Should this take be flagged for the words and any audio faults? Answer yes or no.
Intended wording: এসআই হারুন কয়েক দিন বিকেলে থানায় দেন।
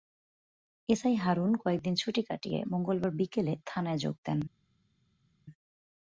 yes